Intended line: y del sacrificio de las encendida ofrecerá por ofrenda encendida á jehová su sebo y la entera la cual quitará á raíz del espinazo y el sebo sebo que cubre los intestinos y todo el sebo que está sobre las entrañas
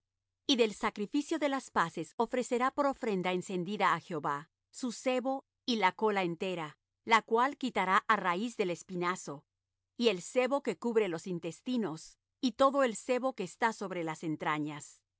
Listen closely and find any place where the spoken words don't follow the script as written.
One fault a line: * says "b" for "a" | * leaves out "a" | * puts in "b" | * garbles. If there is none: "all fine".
* says "paces" for "encendida"
* puts in "cola"
* leaves out "sebo"